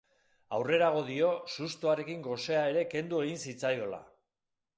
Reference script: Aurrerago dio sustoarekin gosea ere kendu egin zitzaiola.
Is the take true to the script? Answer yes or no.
yes